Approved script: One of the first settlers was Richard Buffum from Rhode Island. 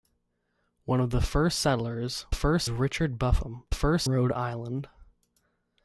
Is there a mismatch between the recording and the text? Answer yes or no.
yes